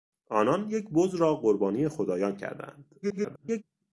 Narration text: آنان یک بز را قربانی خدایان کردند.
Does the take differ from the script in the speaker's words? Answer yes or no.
yes